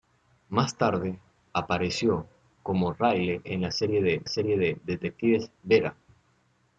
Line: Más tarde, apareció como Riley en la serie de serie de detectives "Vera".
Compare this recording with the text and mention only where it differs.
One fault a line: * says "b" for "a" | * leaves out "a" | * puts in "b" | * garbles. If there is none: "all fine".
all fine